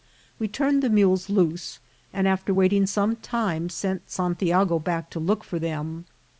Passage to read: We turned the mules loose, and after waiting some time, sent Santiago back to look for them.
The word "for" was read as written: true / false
true